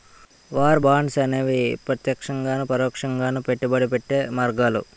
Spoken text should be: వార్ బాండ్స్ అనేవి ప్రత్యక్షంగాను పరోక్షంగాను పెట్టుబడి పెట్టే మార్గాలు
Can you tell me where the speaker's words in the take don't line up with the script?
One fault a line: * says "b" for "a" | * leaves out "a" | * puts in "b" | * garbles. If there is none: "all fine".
all fine